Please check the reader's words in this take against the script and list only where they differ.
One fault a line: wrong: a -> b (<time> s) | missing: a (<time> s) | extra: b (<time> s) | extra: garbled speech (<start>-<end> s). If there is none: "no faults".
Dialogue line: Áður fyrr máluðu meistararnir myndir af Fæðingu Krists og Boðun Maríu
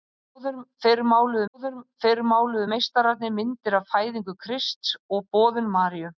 extra: áður fyrr máluðu (1.6 s)